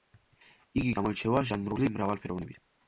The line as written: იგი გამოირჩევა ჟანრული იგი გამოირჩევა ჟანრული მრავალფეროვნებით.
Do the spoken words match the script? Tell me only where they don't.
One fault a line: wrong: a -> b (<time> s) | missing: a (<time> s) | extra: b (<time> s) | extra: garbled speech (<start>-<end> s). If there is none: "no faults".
missing: იგი გამოირჩევა ჟანრული (1.9 s)